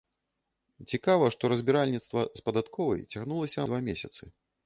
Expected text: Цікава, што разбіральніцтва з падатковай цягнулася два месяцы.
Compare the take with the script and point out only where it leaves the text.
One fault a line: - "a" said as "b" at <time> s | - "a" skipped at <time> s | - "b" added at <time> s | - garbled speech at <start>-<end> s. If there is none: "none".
none